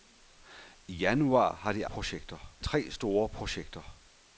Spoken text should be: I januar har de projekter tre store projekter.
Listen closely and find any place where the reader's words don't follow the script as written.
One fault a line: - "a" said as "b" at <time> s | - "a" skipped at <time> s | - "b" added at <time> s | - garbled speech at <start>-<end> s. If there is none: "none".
none